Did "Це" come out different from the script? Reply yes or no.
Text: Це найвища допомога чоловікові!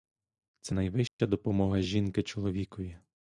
no